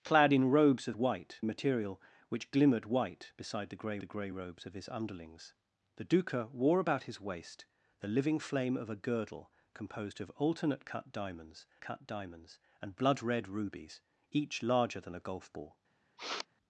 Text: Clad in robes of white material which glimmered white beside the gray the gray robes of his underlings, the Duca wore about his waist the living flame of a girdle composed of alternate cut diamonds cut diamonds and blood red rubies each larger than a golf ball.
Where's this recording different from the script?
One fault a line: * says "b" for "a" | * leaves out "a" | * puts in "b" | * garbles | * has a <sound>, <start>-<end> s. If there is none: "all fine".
* has a sniff, 16.2-16.5 s